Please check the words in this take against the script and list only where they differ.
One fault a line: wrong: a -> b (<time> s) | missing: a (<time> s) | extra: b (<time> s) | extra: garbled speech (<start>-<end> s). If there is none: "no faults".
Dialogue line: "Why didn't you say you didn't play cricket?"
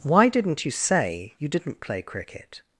no faults